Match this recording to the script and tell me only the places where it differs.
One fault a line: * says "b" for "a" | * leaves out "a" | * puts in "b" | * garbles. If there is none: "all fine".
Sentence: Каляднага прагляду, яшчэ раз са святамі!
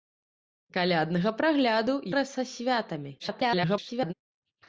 * leaves out "яшчэ"
* garbles